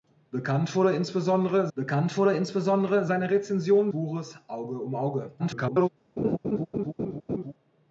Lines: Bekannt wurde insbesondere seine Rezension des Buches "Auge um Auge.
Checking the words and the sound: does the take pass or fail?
fail